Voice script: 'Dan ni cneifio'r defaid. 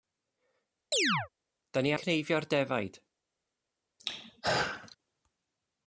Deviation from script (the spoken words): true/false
false